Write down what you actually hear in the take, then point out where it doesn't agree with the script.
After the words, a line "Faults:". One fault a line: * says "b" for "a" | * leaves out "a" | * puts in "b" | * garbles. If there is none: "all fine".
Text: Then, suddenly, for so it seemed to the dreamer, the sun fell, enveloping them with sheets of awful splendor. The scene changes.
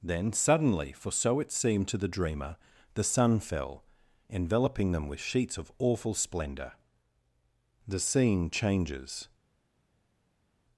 Then, suddenly, for so it seemed to the dreamer, the sun fell, enveloping them with sheets of awful splendor. The scene changes.
Faults:
all fine